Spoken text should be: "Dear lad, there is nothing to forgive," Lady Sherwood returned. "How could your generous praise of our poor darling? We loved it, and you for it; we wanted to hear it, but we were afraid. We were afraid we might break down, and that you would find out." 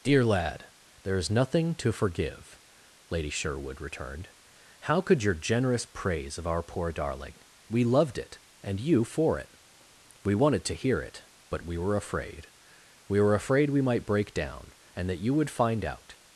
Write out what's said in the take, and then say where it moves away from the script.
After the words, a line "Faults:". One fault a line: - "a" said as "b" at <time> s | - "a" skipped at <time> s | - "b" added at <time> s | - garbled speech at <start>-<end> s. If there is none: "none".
"Dear lad, there is nothing to forgive," Lady Sherwood returned. "How could your generous praise of our poor darling? We loved it, and you for it; we wanted to hear it, but we were afraid. We were afraid we might break down, and that you would find out."
Faults:
none